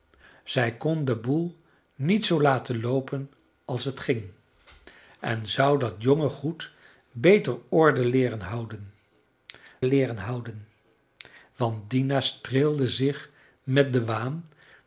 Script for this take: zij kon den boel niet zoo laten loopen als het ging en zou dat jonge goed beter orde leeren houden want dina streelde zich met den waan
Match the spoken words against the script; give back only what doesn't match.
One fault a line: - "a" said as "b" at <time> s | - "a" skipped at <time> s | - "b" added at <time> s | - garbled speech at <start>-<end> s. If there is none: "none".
- "leeren houden" added at 9.8 s